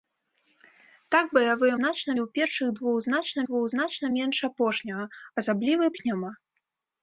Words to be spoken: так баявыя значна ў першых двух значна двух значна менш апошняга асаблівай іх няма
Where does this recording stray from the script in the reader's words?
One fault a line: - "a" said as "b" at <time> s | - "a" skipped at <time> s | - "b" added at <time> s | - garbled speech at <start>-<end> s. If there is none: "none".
none